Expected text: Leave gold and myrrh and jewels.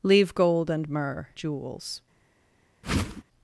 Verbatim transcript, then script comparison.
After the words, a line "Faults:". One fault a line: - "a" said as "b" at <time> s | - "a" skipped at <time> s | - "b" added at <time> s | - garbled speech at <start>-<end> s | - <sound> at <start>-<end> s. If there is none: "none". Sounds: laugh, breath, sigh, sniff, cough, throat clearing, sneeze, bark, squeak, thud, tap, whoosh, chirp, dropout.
Leave gold and myrrh jewels.
Faults:
- "and" skipped at 1.3 s
- whoosh at 2.8-3.2 s